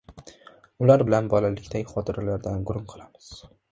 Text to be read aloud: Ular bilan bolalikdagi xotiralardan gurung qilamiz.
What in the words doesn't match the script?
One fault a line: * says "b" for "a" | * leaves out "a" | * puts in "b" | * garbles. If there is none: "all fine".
all fine